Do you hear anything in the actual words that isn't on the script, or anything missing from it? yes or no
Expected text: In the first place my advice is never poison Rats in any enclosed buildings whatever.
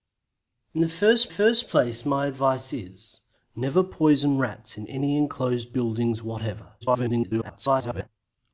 yes